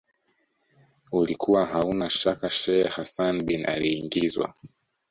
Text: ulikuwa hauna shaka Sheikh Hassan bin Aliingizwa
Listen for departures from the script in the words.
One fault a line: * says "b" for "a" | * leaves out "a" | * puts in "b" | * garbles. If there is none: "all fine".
all fine